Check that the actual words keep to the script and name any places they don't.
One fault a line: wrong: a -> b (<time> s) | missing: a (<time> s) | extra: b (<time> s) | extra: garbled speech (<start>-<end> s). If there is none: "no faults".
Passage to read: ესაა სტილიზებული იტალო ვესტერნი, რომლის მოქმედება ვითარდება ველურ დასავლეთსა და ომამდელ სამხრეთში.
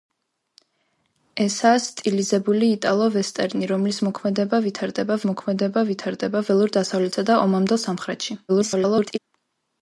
extra: მოქმედება ვითარდება (5.3 s)
extra: garbled speech (8.5-9.2 s)